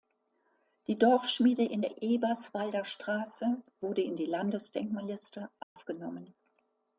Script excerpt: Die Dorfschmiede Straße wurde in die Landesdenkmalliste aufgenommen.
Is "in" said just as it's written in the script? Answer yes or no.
yes